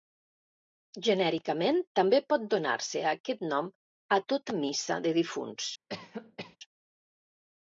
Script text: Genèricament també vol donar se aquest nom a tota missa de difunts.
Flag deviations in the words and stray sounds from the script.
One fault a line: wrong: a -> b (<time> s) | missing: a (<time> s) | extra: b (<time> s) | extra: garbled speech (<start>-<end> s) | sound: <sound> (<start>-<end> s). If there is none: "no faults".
wrong: vol -> pot (2.3 s)
sound: cough (5.9-6.6 s)